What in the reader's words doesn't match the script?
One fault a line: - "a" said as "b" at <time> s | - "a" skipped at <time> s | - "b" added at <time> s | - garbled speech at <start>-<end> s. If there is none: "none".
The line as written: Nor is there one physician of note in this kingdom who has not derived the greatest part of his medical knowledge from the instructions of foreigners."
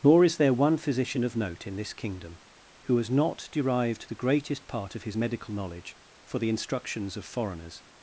- "from" said as "for" at 6.2 s